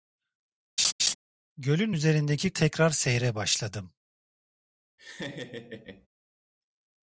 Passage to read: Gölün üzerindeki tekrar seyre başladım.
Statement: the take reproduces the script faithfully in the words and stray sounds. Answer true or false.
false